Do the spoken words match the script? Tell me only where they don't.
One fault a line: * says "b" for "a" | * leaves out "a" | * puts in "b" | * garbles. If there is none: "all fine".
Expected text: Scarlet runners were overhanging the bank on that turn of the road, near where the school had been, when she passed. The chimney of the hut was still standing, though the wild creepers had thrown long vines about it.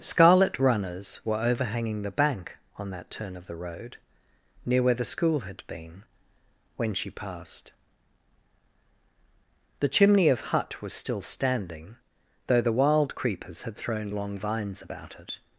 * leaves out "the"